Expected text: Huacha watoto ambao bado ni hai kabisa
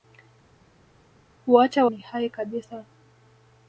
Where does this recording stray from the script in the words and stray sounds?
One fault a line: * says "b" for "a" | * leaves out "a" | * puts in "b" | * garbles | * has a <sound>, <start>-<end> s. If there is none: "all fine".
* leaves out "watoto ambao bado"